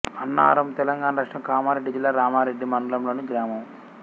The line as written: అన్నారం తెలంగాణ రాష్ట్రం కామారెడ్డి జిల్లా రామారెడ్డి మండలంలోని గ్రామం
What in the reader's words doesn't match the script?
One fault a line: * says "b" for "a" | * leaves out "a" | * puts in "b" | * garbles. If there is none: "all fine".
all fine